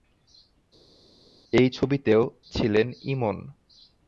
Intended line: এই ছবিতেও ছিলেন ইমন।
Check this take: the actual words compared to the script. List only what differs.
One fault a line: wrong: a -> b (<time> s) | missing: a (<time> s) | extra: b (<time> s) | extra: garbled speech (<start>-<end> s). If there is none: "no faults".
no faults